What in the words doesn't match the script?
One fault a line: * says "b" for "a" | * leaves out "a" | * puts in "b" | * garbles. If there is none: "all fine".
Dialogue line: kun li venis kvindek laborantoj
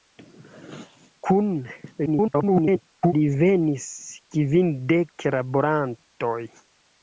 * garbles